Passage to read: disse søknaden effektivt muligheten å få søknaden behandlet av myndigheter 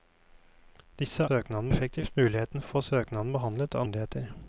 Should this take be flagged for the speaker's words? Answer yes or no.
no